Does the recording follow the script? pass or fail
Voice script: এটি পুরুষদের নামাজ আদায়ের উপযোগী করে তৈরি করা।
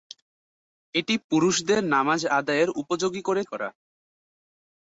fail